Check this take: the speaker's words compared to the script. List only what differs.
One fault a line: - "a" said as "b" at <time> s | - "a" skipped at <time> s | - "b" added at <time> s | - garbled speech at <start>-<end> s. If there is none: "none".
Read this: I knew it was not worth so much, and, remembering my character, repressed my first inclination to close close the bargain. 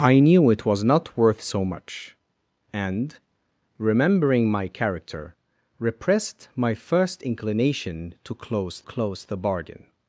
none